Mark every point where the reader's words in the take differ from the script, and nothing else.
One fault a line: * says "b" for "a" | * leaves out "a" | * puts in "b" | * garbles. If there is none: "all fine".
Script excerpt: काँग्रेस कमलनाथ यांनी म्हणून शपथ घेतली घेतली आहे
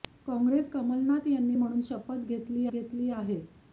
all fine